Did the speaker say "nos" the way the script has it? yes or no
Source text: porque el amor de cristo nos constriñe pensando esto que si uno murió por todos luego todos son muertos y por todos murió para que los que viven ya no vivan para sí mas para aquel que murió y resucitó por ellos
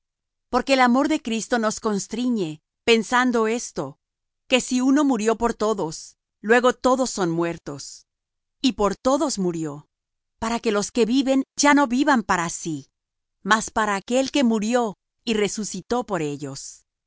yes